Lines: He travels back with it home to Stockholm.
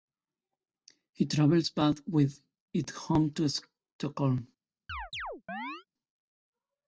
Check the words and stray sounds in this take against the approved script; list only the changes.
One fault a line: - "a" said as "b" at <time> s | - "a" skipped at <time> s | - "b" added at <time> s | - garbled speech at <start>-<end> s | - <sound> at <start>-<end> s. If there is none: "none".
- chirp at 4.9-5.9 s